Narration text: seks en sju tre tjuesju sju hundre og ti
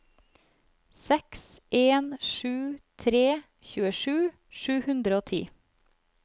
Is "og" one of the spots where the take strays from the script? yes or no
no